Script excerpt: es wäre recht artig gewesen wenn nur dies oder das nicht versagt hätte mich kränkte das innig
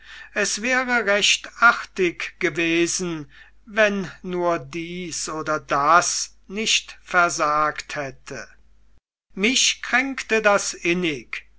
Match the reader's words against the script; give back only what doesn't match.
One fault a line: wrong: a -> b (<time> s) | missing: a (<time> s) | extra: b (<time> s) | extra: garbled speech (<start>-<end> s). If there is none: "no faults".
no faults